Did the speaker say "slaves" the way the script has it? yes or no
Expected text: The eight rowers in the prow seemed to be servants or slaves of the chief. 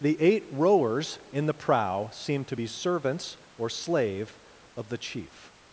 no